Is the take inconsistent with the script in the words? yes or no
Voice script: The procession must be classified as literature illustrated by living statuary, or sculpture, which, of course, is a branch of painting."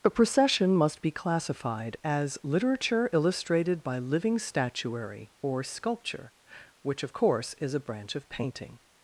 no